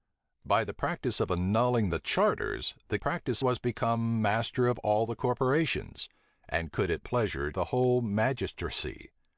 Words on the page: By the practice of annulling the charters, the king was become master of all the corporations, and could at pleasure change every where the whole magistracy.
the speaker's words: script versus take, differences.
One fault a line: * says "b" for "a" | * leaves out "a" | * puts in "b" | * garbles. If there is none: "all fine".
* says "practice" for "king"
* leaves out "change every where"